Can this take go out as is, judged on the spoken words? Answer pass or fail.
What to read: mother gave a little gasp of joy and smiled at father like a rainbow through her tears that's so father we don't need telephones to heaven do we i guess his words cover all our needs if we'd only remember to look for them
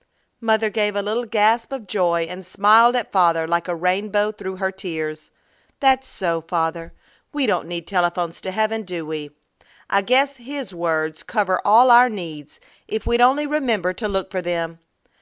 pass